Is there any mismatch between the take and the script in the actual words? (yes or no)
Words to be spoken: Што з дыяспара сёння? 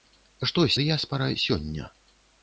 no